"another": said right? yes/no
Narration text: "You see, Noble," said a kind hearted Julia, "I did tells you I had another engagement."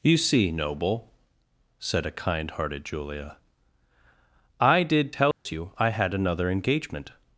yes